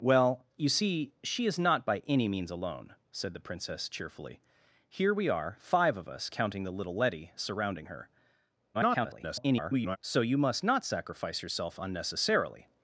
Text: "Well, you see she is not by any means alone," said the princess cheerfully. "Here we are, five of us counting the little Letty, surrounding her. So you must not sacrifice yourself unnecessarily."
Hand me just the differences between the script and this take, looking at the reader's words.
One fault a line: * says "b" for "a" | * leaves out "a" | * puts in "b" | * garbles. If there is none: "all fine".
* garbles